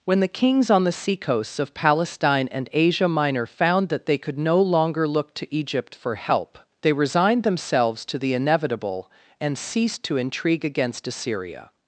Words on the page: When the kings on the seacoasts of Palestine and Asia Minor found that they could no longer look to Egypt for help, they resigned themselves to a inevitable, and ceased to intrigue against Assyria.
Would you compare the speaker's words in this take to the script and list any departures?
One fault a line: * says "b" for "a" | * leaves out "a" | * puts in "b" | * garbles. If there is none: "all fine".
* says "the" for "a"